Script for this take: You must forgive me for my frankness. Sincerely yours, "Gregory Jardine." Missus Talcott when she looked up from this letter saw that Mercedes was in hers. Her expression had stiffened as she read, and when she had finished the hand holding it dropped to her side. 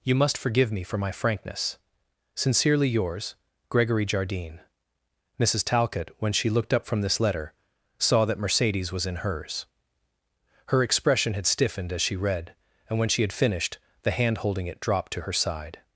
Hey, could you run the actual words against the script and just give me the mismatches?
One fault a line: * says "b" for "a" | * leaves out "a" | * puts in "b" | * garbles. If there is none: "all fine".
all fine